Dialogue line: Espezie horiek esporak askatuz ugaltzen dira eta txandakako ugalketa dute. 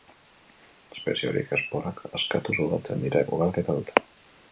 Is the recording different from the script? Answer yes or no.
yes